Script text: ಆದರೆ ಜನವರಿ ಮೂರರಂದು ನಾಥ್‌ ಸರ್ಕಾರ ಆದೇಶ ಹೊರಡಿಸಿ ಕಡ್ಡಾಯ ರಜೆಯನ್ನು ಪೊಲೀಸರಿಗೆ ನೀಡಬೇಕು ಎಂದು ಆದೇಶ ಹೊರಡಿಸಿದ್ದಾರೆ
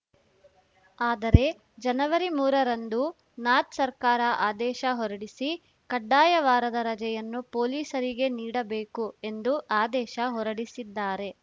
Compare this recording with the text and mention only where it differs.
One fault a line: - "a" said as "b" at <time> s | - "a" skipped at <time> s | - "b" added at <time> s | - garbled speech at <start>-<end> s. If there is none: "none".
- "ವಾರದ" added at 6.5 s